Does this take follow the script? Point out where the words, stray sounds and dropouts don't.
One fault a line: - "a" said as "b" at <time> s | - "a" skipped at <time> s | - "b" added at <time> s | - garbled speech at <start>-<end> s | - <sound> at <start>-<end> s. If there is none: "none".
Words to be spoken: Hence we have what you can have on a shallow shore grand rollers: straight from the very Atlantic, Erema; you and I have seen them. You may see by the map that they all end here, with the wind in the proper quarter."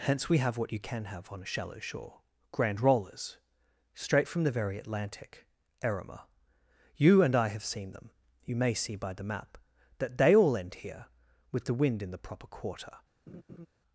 - laugh at 13.3-13.7 s